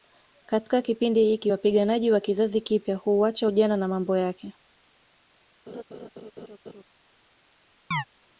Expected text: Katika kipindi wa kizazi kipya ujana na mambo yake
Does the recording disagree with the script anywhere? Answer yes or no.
yes